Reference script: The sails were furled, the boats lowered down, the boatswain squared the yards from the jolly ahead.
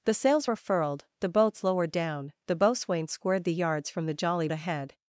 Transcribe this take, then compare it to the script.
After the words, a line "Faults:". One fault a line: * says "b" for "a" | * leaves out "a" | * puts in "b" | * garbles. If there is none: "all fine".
The sails were furled, the boats lowered down, the boatswain squared the yards from the jolly ahead.
Faults:
all fine